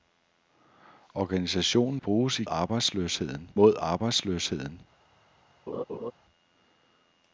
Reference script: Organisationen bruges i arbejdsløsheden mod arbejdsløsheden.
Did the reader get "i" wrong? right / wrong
right